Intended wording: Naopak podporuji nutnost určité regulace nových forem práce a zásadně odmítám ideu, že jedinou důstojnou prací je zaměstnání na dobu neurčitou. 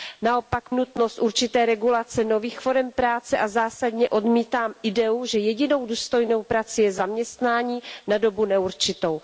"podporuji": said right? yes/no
no